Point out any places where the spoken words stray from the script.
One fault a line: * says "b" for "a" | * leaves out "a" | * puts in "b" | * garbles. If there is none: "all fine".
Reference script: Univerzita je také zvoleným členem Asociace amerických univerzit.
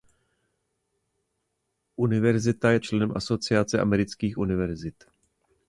* leaves out "také zvoleným"